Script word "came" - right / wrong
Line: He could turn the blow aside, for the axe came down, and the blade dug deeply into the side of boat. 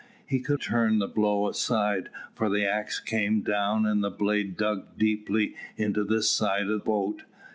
right